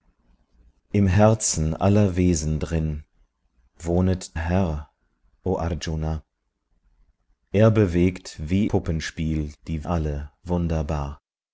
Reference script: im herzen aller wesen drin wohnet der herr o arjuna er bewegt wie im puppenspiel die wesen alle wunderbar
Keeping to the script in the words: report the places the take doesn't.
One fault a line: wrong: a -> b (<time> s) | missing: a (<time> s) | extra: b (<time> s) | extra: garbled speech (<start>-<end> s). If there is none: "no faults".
missing: der (4.4 s)
missing: im (8.7 s)
missing: wesen (9.9 s)